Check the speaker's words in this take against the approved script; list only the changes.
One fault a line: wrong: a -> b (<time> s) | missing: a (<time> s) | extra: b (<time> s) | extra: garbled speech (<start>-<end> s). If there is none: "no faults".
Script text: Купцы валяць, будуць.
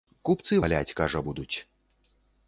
extra: кажа (1.0 s)